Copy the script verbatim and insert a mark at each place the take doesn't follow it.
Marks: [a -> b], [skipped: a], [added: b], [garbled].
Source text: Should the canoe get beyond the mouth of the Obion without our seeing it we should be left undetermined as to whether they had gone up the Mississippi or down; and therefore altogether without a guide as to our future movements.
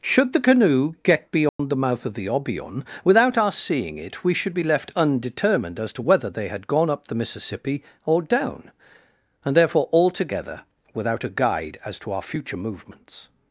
Should the canoe get beyond the mouth of the Obion without our seeing it we should be left undetermined as to whether they had gone up the Mississippi or down; and therefore altogether without a guide as to our future movements.